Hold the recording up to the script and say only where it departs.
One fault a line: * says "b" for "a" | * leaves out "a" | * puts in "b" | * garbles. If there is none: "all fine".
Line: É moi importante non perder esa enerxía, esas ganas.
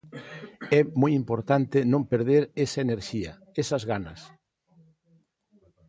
all fine